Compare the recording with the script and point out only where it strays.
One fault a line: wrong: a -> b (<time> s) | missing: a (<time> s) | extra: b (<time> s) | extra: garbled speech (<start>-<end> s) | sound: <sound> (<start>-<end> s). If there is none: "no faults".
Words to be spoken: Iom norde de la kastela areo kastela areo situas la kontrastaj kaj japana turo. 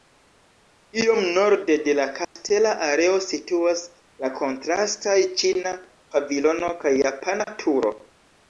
sound: dropout (2.2-2.4 s)
missing: kastela areo (3.2 s)
extra: ĉina pavilono (5.4 s)